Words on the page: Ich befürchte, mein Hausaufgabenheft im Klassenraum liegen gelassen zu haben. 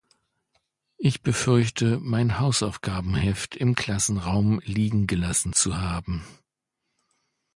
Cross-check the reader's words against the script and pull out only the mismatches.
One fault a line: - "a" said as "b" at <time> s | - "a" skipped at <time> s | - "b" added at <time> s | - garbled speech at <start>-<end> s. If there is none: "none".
none